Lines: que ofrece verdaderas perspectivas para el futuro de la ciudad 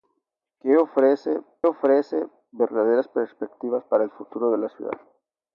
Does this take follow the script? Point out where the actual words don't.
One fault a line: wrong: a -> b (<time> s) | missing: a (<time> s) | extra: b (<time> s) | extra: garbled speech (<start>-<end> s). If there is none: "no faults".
extra: ofrece (1.6 s)